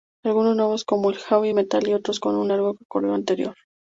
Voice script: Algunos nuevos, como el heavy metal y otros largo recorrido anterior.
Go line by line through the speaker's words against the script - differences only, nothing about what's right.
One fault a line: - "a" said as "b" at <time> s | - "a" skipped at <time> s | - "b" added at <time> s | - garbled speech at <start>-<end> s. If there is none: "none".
- "con un" added at 2.2 s